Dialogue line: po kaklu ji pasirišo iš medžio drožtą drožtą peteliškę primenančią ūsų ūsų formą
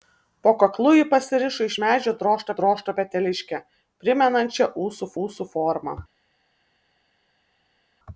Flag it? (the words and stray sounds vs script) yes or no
no